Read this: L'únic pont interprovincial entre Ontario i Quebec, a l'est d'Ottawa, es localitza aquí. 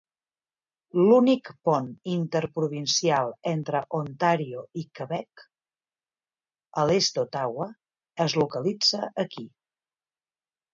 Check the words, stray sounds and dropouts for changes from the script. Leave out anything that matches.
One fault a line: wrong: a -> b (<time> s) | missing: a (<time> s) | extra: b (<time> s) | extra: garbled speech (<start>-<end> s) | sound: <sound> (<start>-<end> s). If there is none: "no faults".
no faults